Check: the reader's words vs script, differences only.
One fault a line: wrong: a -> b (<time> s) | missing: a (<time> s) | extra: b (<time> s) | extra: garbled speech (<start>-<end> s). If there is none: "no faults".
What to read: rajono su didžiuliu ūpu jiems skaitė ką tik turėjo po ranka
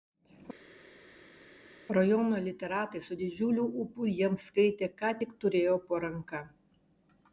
extra: literatai (2.5 s)